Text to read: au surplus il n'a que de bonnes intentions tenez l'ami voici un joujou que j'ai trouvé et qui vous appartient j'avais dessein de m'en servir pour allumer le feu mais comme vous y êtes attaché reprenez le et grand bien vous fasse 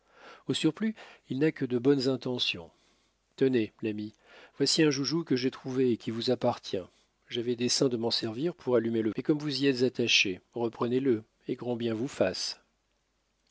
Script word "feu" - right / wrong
wrong